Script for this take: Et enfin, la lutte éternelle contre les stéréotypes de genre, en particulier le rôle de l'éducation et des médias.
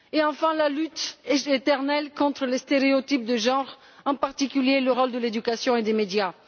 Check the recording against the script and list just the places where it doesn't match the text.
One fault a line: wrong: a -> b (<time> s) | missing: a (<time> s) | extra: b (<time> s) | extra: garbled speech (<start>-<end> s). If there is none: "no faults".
no faults